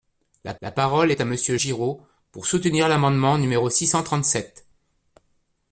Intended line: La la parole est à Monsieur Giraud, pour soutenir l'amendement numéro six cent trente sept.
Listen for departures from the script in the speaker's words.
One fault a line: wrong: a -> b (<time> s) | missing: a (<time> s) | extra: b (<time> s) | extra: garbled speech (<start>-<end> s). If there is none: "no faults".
no faults